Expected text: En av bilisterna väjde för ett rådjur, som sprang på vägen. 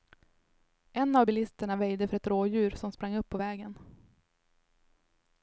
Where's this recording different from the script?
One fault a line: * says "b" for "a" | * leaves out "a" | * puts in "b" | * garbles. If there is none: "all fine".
* puts in "upp"